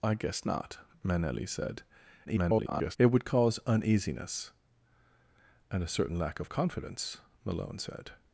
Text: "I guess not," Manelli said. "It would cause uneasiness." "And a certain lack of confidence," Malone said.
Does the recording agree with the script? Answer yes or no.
no